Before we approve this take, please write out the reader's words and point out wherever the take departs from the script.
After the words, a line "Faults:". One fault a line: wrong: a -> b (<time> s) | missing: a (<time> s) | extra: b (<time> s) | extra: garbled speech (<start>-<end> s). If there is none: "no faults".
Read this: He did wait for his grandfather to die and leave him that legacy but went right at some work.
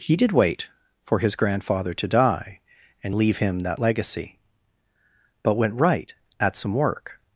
He did wait for his grandfather to die and leave him that legacy but went right at some work.
Faults:
no faults